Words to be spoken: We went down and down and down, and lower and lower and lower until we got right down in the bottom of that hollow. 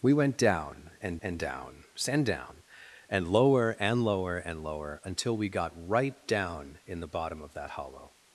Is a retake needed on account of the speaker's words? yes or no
yes